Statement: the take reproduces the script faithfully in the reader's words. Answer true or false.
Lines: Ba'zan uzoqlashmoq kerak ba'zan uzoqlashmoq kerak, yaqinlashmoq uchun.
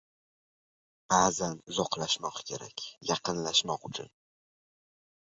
false